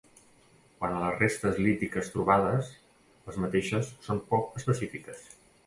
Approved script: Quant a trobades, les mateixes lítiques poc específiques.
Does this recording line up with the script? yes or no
no